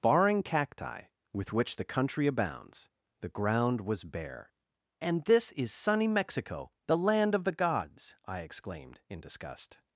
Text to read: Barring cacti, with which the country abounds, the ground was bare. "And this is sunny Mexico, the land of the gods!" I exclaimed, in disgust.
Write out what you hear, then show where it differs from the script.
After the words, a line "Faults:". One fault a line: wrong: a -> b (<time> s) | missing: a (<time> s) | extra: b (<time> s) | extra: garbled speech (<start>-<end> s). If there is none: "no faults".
Barring cacti, with which the country abounds, the ground was bare. "And this is sunny Mexico, the land of the gods!" I exclaimed, in disgust.
Faults:
no faults